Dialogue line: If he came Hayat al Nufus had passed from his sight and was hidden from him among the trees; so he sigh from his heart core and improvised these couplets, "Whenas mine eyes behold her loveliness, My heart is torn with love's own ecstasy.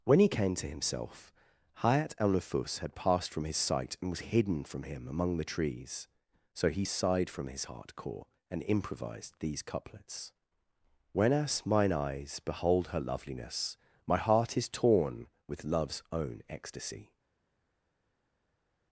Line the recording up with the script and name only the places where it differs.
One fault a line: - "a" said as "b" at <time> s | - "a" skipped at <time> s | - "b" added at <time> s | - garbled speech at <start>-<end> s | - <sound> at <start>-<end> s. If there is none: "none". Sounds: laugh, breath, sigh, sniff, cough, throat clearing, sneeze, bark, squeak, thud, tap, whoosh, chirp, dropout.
- "If" said as "When" at 0.0 s
- "to himself" added at 0.6 s
- "sigh" said as "sighed" at 6.8 s